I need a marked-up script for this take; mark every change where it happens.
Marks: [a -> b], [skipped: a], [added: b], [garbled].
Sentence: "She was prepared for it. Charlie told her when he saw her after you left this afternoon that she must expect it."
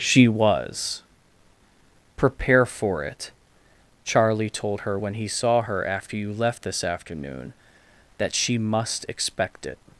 "She was [prepared -> prepare] for it. Charlie told her when he saw her after you left this afternoon that she must expect it."